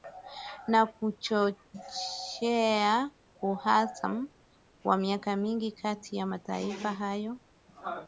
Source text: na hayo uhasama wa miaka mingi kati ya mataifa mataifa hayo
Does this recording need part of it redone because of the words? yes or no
yes